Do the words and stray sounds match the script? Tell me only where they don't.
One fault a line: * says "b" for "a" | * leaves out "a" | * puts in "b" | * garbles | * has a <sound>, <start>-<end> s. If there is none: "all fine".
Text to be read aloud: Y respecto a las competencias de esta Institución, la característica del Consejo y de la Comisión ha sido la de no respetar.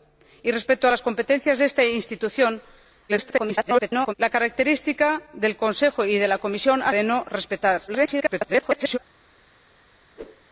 * garbles
* leaves out "sido la"
* garbles
* has a whoosh, 10.2-10.4 s